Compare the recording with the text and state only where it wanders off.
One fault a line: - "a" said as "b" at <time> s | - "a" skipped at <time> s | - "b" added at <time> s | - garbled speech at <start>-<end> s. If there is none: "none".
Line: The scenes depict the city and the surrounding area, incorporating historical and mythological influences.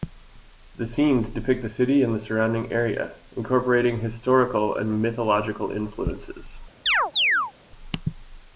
none